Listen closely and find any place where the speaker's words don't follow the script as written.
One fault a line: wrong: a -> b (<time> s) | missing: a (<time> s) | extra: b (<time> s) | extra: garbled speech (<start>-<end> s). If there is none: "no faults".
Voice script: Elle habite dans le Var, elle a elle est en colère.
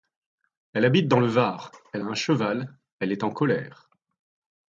extra: un cheval (2.0 s)